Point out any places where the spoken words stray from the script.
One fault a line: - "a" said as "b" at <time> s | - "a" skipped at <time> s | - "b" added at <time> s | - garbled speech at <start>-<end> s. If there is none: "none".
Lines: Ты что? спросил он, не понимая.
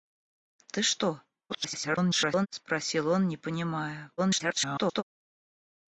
- garbled speech at 1.5-2.5 s
- garbled speech at 4.2-5.0 s